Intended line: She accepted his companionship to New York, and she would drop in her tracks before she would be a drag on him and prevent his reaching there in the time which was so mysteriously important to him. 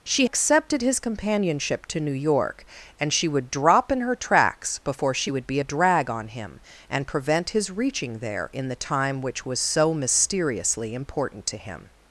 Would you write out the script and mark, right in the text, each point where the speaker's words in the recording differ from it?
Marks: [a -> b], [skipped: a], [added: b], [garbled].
She accepted his companionship to New York, and she would drop in her tracks before she would be a drag on him and prevent his reaching there in the time which was so mysteriously important to him.